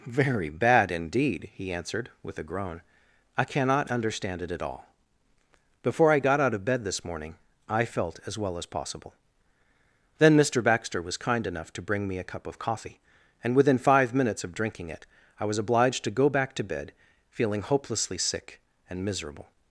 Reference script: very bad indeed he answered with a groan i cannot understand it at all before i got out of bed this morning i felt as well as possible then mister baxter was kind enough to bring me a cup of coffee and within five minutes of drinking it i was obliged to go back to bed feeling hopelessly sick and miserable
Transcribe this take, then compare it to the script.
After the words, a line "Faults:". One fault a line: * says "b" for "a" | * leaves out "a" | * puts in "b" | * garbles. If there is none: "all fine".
very bad indeed he answered with a groan i cannot understand it at all before i got out of bed this morning i felt as well as possible then mister baxter was kind enough to bring me a cup of coffee and within five minutes of drinking it i was obliged to go back to bed feeling hopelessly sick and miserable
Faults:
all fine